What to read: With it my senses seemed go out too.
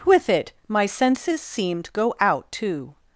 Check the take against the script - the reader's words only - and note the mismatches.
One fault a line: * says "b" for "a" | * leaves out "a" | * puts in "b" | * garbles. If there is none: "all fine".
all fine